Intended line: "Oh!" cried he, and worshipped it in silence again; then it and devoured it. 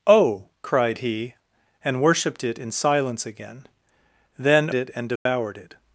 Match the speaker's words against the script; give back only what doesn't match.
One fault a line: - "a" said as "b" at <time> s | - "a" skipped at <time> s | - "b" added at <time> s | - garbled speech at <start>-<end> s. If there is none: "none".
none